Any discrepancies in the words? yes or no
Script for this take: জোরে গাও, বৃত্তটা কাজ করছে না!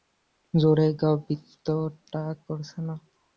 yes